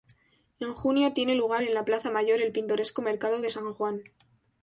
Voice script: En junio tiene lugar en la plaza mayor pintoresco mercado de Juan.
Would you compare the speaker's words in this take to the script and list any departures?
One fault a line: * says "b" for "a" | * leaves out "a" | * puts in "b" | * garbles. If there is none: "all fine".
* puts in "el"
* puts in "San"